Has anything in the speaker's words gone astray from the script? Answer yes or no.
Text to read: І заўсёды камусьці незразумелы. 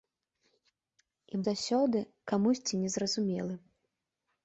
no